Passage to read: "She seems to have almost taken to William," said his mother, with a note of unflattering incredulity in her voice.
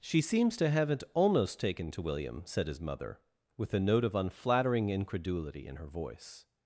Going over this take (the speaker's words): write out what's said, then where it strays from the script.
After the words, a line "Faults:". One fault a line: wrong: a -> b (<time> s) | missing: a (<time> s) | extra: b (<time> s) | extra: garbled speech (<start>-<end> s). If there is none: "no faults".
"She seems to haven't almost taken to William," said his mother, with a note of unflattering incredulity in her voice.
Faults:
wrong: have -> haven't (0.7 s)